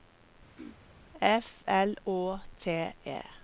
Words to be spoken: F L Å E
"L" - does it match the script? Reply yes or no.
yes